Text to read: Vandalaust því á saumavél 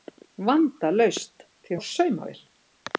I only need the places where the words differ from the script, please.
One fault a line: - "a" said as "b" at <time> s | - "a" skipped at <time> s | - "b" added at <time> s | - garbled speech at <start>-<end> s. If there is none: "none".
none